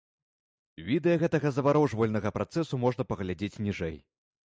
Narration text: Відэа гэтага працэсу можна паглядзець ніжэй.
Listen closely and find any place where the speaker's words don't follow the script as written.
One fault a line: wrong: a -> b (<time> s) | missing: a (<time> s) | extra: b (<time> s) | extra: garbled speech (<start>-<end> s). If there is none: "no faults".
extra: заварожвальнага (1.6 s)